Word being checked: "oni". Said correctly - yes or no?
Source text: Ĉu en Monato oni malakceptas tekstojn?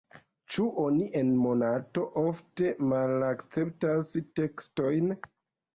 no